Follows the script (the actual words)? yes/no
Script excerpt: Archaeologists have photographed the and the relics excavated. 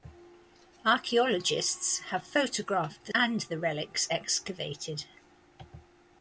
yes